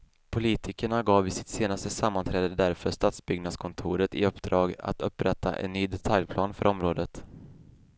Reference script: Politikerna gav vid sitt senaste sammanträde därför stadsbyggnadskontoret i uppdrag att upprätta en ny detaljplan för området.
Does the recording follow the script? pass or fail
pass